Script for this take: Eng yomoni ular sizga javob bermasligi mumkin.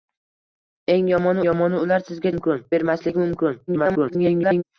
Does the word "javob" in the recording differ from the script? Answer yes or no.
yes